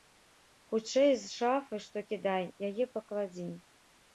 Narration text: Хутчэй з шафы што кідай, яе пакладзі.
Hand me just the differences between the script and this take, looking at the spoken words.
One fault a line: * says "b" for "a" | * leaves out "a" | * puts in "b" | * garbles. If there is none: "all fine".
all fine